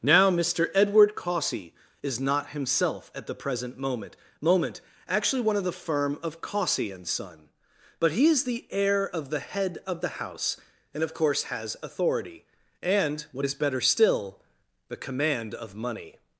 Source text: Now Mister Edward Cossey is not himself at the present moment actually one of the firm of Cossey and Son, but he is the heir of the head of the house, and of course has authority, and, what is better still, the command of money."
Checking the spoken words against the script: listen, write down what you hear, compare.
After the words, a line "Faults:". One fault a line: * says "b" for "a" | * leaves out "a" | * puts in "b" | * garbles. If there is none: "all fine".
Now Mister Edward Cossey is not himself at the present moment moment actually one of the firm of Cossey and Son, but he is the heir of the head of the house, and of course has authority, and, what is better still, the command of money."
Faults:
* puts in "moment"